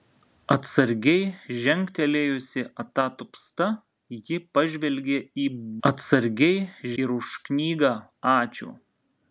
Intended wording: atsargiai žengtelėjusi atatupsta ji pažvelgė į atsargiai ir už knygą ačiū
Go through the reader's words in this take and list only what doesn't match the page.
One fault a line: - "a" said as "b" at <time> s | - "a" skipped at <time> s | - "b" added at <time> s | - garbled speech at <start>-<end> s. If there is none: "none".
none